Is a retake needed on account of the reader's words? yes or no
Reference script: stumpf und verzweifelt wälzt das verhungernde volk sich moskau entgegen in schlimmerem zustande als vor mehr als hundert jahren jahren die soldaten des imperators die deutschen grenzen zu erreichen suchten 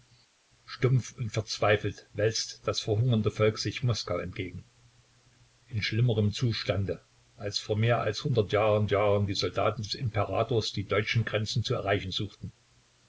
no